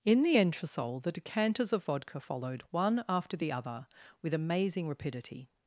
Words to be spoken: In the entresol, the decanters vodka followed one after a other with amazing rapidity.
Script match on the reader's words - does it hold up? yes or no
no